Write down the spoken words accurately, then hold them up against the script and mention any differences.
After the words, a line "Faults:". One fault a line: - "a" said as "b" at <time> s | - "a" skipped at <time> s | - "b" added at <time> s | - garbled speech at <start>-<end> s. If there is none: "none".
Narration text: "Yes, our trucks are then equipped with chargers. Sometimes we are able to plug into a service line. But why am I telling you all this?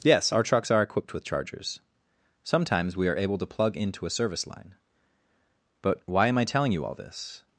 "Yes, our trucks are equipped with chargers. Sometimes we are able to plug into a service line. But why am I telling you all this?
Faults:
- "then" skipped at 0.8 s